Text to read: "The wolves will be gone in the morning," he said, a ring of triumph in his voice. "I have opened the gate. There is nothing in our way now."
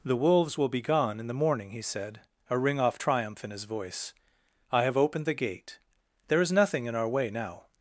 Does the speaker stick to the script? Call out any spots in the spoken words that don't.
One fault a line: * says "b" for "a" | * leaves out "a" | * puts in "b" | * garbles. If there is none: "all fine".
* says "off" for "of"